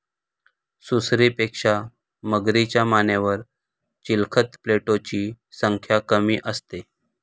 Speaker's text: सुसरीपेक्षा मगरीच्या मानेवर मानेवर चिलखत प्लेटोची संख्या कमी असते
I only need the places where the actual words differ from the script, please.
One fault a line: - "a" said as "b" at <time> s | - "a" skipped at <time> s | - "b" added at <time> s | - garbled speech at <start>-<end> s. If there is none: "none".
- "मानेवर" skipped at 3.4 s